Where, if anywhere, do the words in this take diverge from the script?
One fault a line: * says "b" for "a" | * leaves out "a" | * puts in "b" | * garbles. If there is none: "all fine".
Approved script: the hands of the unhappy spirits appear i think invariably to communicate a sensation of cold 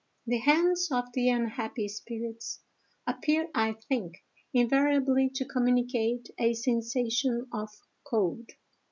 all fine